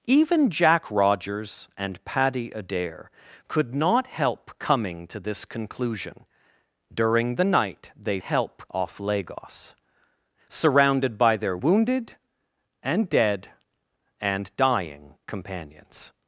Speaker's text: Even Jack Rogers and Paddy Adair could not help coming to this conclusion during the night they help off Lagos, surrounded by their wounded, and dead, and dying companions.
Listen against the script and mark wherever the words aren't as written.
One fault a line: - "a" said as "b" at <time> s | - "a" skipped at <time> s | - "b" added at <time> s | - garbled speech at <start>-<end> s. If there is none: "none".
none